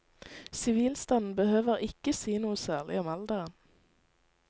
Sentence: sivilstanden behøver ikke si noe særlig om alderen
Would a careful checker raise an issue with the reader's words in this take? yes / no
no